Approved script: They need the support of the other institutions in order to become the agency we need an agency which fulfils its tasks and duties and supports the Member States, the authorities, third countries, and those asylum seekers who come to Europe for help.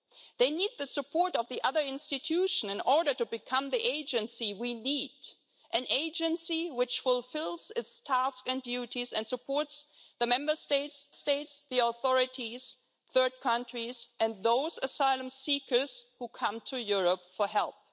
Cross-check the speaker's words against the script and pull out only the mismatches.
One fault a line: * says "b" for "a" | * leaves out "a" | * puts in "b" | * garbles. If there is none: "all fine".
* puts in "States"